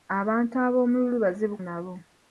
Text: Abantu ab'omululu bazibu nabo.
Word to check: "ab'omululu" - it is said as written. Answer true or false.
true